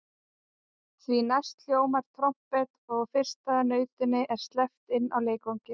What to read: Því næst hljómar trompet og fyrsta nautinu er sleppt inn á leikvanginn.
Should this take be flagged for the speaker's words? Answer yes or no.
no